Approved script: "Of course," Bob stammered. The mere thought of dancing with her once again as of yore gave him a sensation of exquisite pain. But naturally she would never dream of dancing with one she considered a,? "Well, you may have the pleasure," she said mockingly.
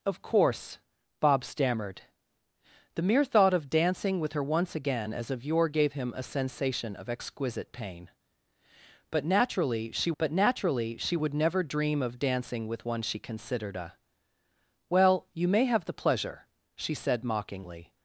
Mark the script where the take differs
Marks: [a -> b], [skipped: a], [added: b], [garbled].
"Of course," Bob stammered. The mere thought of dancing with her once again as of yore gave him a sensation of exquisite pain. But naturally she [added: but naturally she] would never dream of dancing with one she considered a,? "Well, you may have the pleasure," she said mockingly.